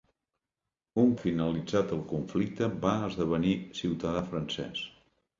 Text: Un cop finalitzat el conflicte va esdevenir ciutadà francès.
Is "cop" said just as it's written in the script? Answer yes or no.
no